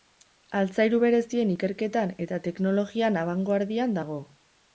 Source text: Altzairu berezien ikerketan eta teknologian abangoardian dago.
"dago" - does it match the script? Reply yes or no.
yes